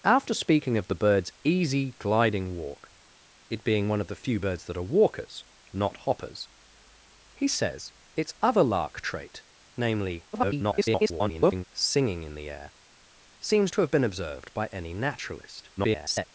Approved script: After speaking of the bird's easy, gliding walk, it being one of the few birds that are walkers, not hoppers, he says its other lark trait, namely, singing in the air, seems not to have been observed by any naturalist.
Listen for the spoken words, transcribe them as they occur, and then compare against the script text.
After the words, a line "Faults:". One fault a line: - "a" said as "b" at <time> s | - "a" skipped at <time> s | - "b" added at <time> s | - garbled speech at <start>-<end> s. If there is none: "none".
After speaking of the bird's easy, gliding walk, it being one of the few birds that are walkers, not hoppers, he says its other lark trait, namely, [garbled] singing in the air, seems to have been observed by any naturalist. [garbled]
Faults:
- garbled speech at 10.3-11.6 s
- "not" skipped at 13.7 s
- garbled speech at 15.8-16.3 s